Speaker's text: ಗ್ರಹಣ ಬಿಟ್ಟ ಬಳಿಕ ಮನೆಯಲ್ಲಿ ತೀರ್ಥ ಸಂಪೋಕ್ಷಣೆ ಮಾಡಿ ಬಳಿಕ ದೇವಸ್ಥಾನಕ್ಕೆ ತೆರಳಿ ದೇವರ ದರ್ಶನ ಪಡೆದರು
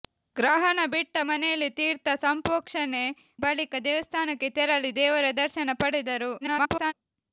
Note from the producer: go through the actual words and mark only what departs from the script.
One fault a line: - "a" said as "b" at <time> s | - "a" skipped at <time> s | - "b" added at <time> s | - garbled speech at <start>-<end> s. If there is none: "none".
- "ಬಳಿಕ" skipped at 1.2 s
- "ಮಾಡಿ" skipped at 3.0 s
- garbled speech at 6.4-6.9 s